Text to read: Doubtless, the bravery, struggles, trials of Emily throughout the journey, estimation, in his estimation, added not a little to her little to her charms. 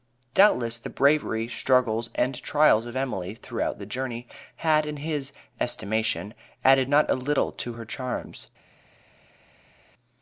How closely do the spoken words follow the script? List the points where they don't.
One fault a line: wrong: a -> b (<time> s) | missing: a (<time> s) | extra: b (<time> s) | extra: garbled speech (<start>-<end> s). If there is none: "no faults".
extra: and (2.1 s)
wrong: estimation -> had (4.5 s)
missing: little to her (7.9 s)